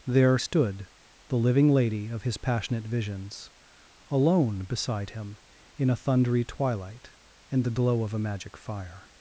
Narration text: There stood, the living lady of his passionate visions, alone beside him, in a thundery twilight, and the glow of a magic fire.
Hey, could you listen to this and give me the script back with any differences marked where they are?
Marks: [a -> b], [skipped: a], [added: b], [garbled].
There stood, the living lady of his passionate visions, alone beside him, in a thundery twilight, and the glow of a magic fire.